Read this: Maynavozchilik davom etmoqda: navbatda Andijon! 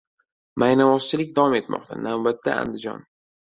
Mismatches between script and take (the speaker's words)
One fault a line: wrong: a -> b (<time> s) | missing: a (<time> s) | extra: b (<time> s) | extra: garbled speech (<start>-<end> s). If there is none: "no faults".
no faults